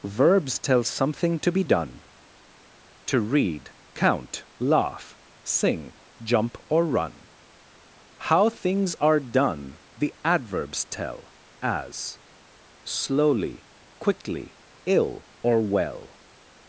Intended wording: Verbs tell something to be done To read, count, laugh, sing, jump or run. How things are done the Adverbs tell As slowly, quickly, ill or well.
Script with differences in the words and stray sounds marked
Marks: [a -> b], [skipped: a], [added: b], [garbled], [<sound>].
Verbs tell something to be done To read, count, laugh, sing, jump or run. How things are done the Adverbs tell As slowly, quickly, ill or well.